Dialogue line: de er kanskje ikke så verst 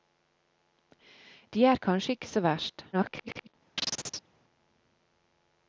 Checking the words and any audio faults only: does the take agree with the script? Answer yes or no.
no